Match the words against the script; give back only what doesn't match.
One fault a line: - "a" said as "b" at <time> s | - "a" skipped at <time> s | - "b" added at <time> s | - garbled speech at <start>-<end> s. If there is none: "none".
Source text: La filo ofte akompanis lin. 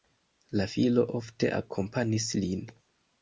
none